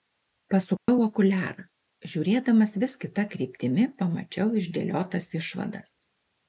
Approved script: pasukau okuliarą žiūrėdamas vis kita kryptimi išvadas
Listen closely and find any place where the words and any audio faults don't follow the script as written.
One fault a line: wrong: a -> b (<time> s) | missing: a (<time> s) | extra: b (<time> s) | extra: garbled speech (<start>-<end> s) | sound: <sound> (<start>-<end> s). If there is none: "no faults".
sound: dropout (0.8-0.9 s)
extra: pamačiau išdėliotas (4.0 s)